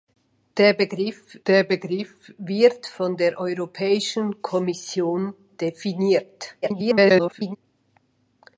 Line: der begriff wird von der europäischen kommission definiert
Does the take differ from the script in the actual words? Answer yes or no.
yes